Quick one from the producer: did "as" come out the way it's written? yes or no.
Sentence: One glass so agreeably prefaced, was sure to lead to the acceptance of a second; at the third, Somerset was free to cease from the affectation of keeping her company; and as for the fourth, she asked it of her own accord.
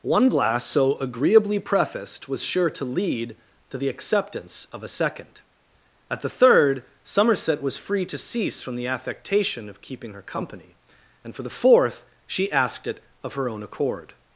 no